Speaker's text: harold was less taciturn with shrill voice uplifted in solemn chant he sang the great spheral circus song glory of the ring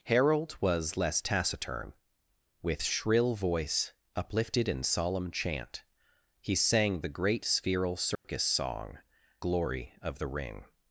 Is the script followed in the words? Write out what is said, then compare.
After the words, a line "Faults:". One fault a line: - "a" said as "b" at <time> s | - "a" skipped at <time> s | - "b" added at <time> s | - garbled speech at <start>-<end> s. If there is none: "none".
harold was less taciturn with shrill voice uplifted in solemn chant he sang the great spheral circus song glory of the ring
Faults:
none